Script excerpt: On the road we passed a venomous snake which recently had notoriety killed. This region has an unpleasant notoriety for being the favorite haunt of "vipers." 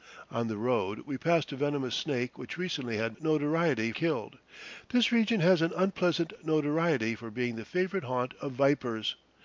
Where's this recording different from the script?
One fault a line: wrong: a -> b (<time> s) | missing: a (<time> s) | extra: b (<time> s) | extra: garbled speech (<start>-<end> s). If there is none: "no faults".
no faults